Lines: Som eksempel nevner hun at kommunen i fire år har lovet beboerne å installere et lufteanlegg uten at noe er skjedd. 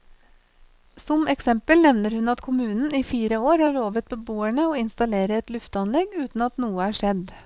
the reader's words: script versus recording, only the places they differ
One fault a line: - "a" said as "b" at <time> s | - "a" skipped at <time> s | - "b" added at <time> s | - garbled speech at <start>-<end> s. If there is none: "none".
none